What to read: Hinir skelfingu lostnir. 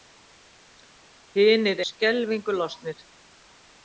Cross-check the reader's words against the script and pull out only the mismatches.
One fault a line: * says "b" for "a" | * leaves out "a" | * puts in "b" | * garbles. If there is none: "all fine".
all fine